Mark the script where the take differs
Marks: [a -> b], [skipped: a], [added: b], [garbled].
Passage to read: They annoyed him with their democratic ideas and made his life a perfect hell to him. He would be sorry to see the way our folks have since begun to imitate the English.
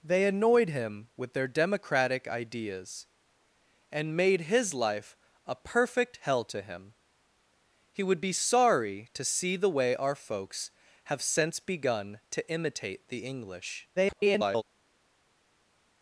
They annoyed him with their democratic ideas and made his life a perfect hell to him. He would be sorry to see the way our folks have since begun to imitate the English. [garbled]